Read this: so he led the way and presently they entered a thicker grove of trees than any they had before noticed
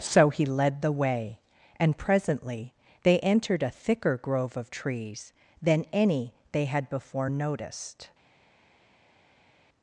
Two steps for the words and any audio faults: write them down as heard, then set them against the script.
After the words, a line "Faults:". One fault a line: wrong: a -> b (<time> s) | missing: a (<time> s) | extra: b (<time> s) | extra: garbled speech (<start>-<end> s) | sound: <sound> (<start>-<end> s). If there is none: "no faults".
so he led the way and presently they entered a thicker grove of trees than any they had before noticed
Faults:
no faults